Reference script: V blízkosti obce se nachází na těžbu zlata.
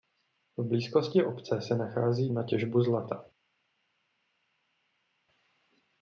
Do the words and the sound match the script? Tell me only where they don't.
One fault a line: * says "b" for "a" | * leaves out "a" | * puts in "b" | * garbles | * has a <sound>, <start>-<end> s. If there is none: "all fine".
all fine